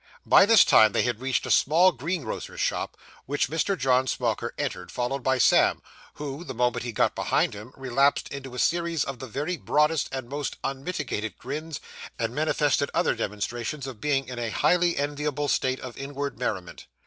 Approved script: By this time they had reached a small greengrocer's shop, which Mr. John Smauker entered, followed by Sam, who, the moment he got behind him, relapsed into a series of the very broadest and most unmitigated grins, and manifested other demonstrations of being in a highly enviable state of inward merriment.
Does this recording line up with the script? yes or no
yes